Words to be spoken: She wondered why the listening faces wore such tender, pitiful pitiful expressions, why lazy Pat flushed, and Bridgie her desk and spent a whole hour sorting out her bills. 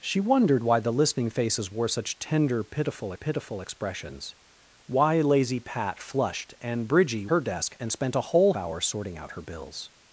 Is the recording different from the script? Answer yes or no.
no